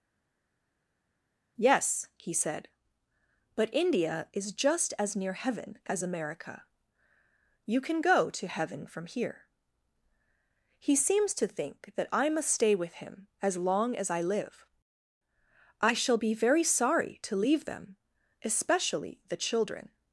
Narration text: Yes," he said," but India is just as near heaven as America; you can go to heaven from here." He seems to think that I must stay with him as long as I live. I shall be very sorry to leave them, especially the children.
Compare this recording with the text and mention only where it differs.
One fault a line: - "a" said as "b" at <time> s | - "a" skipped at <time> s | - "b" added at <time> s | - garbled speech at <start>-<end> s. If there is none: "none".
none